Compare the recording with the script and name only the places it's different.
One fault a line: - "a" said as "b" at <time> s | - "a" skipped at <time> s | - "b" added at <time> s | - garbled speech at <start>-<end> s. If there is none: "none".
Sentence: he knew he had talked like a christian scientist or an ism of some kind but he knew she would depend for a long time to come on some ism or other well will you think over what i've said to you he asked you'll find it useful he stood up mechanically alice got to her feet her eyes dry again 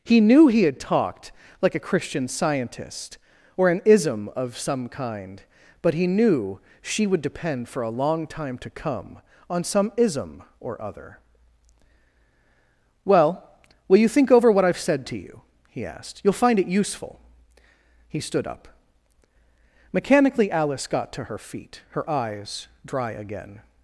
none